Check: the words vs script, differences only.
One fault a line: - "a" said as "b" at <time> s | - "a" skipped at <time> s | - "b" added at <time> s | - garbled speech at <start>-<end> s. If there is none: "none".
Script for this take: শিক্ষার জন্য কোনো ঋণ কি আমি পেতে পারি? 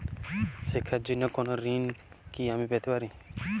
none